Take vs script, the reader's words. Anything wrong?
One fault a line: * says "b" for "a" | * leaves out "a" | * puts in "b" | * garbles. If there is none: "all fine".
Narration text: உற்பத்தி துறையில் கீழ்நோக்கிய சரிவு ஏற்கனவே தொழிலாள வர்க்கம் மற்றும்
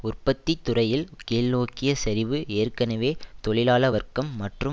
all fine